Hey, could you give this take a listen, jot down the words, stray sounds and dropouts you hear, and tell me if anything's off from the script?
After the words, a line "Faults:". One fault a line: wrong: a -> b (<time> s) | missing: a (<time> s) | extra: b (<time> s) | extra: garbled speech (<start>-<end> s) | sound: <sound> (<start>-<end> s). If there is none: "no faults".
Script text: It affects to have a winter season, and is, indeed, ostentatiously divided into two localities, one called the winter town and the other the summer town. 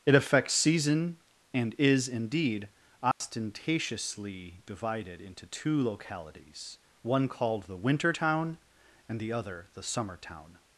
It affects season, and is, indeed, ostentatiously divided into two localities, one called the winter town and the other the summer town.
Faults:
missing: to have a winter (0.6 s)
sound: dropout (3.1-3.2 s)